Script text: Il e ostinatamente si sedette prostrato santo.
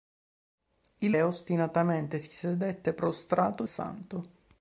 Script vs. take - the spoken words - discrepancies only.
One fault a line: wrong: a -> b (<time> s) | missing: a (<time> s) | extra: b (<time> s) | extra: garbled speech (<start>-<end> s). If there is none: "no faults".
no faults